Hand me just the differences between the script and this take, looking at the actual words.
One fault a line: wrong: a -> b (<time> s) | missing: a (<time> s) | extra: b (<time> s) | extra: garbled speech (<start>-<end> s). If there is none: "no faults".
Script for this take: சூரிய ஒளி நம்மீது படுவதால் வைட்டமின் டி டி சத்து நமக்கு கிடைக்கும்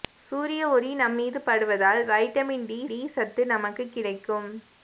no faults